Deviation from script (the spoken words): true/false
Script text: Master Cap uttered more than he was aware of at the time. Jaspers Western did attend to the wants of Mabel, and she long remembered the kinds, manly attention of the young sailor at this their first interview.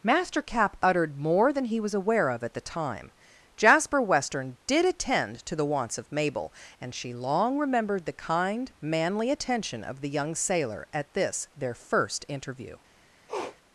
true